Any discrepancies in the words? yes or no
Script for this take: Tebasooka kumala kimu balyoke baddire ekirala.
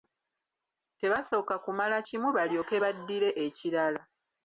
no